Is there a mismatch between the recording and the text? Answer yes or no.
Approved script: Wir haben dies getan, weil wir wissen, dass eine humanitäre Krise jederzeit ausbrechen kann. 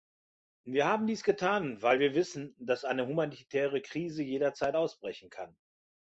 no